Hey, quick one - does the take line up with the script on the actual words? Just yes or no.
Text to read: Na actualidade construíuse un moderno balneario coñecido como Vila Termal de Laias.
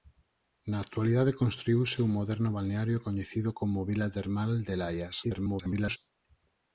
no